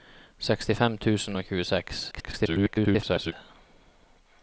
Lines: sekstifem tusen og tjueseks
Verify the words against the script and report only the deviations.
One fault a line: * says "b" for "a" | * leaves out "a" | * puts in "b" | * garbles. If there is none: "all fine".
* garbles